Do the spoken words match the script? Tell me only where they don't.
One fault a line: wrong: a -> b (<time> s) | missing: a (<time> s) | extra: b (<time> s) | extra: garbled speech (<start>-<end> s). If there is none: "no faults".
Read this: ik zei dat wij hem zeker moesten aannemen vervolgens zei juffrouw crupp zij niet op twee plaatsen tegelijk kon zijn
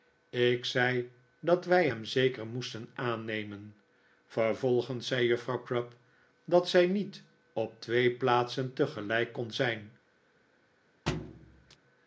extra: dat (6.4 s)